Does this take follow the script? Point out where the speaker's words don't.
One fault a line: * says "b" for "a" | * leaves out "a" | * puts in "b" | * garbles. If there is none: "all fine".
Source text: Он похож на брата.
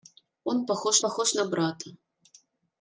* puts in "похож"